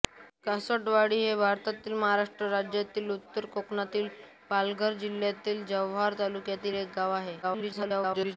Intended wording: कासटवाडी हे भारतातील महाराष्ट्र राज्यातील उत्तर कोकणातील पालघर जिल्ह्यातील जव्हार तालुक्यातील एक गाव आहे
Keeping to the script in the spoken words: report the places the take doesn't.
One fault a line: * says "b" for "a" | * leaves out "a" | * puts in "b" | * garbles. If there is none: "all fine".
* garbles